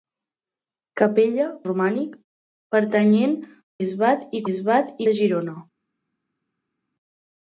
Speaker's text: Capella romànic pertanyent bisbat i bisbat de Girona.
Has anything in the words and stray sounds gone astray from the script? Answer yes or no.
no